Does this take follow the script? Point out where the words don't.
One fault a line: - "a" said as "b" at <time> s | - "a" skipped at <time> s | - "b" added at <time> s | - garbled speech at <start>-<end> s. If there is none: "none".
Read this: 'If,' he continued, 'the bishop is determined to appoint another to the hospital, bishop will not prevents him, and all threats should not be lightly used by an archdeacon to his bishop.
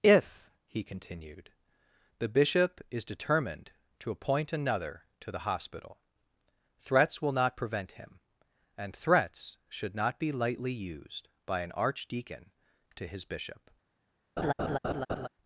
- "bishop" said as "threats" at 6.8 s
- "prevents" said as "prevent" at 7.6 s
- "all" skipped at 8.9 s